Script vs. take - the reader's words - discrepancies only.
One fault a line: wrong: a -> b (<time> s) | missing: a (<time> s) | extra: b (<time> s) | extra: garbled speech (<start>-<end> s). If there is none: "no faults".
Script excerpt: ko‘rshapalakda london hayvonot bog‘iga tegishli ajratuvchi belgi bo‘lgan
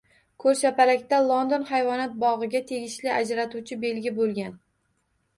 no faults